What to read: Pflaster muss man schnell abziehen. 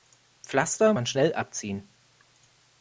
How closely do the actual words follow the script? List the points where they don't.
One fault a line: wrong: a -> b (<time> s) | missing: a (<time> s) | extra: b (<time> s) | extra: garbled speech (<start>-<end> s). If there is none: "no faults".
missing: muss (0.9 s)